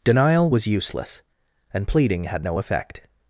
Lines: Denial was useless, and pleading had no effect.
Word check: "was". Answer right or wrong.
right